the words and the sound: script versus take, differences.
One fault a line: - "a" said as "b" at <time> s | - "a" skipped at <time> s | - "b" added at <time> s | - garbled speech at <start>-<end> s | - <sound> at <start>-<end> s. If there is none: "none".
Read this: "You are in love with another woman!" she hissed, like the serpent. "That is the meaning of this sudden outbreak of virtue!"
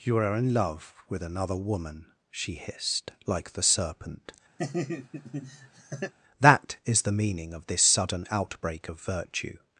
- laugh at 4.6-6.1 s